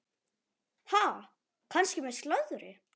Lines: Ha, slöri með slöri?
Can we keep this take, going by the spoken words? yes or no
no